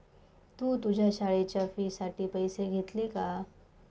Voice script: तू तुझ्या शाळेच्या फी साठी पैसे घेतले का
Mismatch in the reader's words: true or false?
false